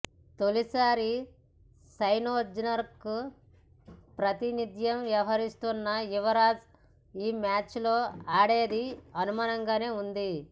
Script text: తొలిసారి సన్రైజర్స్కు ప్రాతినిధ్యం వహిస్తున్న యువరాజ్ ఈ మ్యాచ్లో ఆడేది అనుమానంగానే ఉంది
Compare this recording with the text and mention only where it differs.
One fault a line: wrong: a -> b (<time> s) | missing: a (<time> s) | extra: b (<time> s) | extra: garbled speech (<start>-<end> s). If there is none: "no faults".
no faults